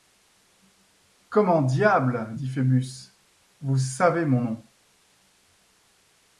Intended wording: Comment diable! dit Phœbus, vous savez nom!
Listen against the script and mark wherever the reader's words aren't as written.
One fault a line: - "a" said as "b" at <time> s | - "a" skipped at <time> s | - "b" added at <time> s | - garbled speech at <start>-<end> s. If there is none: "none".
- "mon" added at 4.2 s